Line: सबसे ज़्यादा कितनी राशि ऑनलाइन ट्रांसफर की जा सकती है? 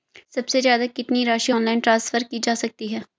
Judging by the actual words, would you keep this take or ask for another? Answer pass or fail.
pass